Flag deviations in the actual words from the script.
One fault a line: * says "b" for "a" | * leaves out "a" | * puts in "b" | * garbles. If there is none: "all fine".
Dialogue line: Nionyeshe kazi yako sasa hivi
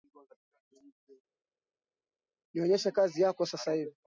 all fine